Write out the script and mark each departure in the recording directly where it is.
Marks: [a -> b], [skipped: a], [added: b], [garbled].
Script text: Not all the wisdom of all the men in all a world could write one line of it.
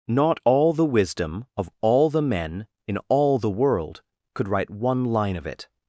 Not all the wisdom of all the men in all [a -> the] world could write one line of it.